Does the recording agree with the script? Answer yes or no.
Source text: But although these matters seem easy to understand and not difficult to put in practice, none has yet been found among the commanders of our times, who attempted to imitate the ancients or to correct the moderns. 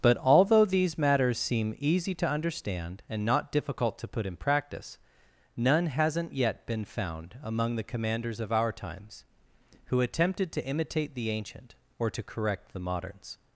no